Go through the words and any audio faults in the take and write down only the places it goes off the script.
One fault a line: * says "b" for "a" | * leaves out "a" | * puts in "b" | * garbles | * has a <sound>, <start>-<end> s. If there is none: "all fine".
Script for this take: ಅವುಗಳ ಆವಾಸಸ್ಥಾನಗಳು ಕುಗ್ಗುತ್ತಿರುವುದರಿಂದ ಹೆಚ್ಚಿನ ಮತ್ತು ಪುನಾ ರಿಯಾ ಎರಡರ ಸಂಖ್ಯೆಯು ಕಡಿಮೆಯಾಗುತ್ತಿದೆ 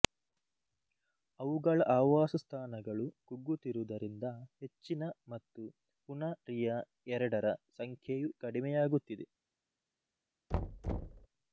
* has a thud, 10.5-11.3 s